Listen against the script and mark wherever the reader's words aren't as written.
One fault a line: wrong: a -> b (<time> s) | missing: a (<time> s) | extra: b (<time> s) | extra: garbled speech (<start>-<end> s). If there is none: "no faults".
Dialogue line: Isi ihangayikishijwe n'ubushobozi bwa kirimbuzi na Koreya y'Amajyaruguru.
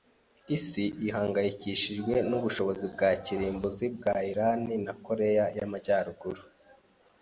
extra: bwa Irani (4.0 s)